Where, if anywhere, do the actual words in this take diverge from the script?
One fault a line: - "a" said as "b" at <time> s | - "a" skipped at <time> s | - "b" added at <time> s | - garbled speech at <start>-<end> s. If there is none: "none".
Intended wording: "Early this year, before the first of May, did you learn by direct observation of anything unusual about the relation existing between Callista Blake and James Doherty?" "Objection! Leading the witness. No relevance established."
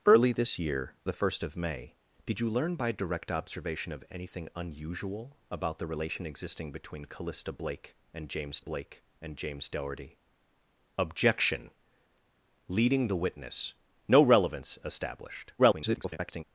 - "before" skipped at 0.9 s
- "Blake and James" added at 8.6 s
- garbled speech at 15.6-16.4 s